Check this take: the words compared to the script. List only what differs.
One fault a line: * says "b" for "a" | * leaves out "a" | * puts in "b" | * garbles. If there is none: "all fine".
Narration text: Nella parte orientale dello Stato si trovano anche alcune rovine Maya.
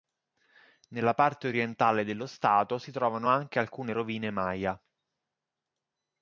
all fine